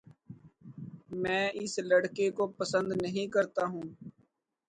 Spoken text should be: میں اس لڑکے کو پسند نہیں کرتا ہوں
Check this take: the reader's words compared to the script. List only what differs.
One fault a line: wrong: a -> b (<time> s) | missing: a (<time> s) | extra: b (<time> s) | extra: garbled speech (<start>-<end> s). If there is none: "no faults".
no faults